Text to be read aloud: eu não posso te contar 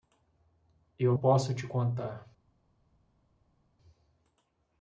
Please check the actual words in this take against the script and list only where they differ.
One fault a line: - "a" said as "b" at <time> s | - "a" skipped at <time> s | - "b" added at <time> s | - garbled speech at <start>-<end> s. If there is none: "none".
- "não" skipped at 1.1 s